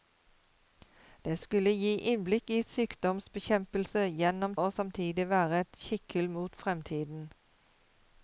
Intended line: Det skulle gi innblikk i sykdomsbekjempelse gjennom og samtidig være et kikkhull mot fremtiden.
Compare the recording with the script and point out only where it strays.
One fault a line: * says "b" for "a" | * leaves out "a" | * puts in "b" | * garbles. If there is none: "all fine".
all fine